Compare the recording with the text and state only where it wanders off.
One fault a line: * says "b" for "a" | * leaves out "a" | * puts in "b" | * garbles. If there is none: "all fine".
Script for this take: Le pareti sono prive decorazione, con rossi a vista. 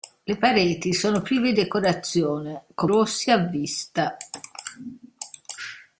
all fine